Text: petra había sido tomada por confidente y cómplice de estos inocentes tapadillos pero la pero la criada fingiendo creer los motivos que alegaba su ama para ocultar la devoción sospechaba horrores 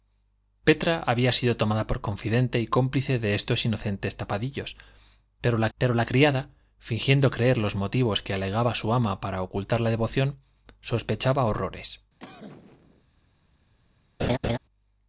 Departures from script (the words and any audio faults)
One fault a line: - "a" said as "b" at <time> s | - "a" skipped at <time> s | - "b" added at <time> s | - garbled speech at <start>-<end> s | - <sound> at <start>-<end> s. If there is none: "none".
- cough at 12.2-13.0 s
- laugh at 14.2-14.6 s